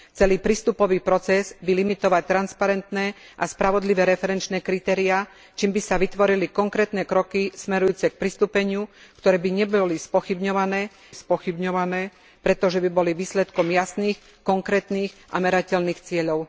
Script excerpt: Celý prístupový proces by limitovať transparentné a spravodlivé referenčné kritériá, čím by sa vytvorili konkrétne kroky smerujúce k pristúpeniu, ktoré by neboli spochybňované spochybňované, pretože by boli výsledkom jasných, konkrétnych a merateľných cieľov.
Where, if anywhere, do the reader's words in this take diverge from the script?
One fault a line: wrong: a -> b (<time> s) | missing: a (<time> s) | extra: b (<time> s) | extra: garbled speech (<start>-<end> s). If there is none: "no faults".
no faults